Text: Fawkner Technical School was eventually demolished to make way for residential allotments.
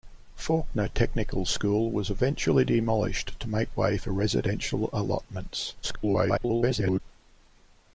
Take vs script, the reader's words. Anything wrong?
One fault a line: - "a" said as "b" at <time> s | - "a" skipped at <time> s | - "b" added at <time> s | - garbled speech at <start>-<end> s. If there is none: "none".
- garbled speech at 5.8-7.0 s